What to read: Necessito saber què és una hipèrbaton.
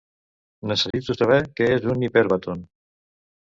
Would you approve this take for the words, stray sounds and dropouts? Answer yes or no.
no